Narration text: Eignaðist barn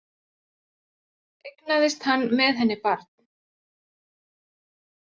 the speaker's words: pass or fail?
fail